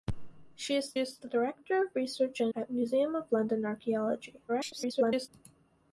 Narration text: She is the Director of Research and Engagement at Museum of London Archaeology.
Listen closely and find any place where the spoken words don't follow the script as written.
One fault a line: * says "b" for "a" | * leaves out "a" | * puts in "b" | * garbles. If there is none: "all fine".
* puts in "is"
* leaves out "Engagement"
* garbles